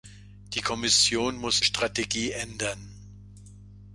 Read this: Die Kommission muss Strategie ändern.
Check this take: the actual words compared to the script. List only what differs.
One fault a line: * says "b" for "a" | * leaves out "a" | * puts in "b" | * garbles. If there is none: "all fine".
all fine